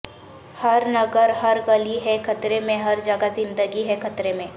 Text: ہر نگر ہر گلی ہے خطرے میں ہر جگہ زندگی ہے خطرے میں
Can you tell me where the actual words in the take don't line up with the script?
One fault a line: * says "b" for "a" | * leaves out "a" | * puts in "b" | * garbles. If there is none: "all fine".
all fine